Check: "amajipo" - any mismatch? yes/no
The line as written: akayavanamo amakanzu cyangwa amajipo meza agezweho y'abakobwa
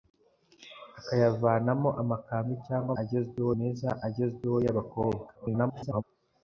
yes